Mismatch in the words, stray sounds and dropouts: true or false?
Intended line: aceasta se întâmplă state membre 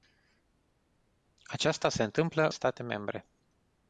false